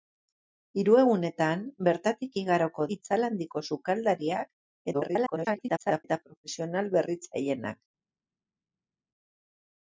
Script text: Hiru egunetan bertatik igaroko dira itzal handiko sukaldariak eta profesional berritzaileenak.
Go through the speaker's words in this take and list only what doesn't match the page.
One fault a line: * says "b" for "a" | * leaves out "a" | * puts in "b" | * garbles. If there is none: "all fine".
* leaves out "dira"
* garbles